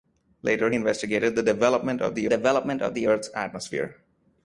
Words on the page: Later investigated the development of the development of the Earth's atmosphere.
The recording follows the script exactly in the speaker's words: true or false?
true